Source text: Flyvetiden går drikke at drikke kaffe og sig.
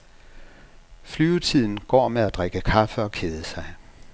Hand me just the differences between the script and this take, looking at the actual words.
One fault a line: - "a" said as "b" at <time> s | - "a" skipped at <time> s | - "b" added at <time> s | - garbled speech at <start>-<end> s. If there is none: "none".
- "drikke" said as "med" at 2.1 s
- "kede" added at 3.1 s